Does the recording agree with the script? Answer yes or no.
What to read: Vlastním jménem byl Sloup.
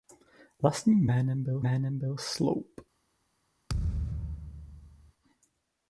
no